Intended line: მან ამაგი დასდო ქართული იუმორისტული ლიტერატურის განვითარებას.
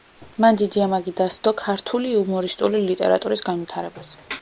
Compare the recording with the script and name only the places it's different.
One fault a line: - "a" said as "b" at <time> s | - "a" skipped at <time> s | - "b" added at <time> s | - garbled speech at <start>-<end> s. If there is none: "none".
- "დიდი" added at 0.6 s